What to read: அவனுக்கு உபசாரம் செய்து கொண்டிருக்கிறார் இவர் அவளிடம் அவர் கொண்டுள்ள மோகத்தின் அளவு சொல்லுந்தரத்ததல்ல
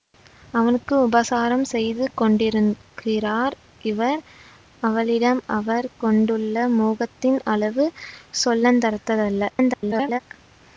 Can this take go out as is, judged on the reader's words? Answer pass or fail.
fail